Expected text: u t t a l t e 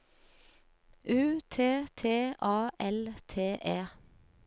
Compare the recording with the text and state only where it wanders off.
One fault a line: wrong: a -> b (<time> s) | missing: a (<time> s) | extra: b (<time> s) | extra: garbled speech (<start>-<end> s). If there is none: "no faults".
no faults